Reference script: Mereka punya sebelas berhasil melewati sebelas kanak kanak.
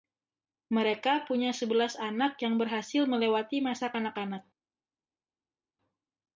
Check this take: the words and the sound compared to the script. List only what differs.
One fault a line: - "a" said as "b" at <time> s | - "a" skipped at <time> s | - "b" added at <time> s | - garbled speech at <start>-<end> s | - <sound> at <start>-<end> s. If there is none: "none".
- "anak yang" added at 1.9 s
- "sebelas" said as "masa" at 3.6 s